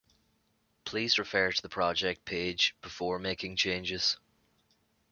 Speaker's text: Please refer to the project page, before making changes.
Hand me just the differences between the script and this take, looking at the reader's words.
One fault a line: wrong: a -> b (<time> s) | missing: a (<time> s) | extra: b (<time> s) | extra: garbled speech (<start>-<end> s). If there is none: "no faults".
no faults